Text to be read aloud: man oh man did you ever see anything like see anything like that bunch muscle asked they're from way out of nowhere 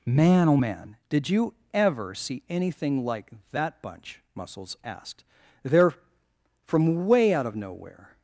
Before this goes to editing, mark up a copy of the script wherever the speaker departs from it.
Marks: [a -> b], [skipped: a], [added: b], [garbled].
man oh man did you ever see anything like [skipped: see anything like] that bunch [muscle -> muscles] asked they're from way out of nowhere